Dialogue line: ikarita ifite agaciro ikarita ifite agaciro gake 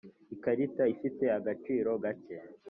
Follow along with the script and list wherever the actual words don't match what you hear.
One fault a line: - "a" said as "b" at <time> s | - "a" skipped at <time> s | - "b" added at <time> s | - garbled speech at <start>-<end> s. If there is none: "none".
- "ikarita ifite agaciro" skipped at 1.9 s